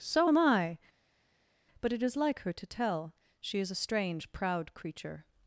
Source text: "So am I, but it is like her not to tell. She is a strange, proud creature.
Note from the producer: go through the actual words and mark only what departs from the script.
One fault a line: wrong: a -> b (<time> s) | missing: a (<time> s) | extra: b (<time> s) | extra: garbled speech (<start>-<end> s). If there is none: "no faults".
missing: not (2.5 s)